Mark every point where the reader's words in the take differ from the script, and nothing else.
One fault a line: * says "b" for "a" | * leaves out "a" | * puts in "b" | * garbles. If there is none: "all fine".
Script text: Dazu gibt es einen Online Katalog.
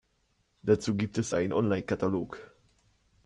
all fine